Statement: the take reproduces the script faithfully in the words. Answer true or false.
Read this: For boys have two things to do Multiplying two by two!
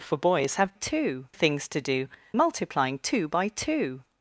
true